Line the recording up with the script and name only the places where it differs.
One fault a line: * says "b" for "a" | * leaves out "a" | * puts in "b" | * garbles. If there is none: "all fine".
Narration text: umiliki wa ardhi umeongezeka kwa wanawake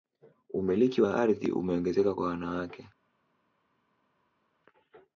all fine